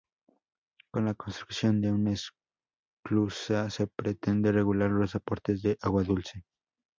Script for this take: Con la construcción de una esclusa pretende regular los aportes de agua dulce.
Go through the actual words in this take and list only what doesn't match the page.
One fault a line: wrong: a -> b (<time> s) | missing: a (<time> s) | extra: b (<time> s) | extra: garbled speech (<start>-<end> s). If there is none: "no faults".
extra: se (3.7 s)